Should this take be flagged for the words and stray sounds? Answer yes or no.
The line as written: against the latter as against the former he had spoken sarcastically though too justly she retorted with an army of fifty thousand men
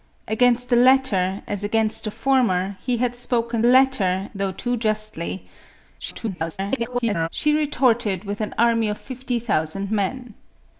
yes